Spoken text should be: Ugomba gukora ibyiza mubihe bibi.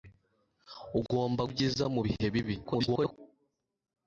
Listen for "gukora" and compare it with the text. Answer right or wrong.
wrong